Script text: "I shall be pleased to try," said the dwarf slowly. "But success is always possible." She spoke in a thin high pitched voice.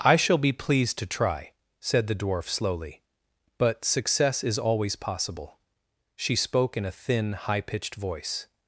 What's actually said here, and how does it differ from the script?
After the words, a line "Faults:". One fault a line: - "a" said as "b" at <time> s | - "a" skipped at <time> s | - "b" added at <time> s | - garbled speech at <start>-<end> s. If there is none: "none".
"I shall be pleased to try," said the dwarf slowly. "But success is always possible." She spoke in a thin high pitched voice.
Faults:
none